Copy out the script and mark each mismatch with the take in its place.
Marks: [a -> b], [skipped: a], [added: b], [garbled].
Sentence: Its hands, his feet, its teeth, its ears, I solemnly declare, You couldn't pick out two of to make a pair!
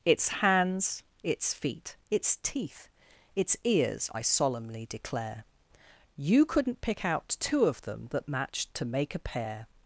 Its hands, [his -> its] feet, its teeth, its ears, I solemnly declare, You couldn't pick out two of [added: them that matched] to make a pair!